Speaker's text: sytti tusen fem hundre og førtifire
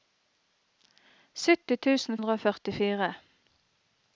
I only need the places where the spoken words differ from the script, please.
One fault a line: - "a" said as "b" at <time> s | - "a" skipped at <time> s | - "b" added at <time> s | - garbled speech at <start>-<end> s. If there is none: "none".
- "fem" skipped at 2.2 s